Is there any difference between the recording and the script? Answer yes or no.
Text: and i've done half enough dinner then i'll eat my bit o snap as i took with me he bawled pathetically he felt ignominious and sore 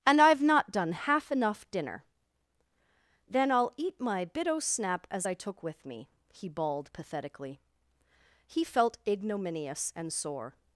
yes